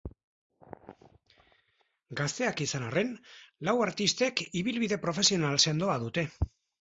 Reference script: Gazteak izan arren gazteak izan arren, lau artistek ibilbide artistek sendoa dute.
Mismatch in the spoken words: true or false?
true